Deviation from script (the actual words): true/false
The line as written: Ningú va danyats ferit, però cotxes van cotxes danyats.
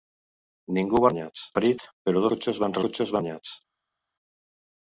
false